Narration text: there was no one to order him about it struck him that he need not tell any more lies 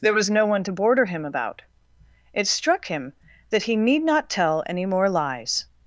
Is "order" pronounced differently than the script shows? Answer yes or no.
yes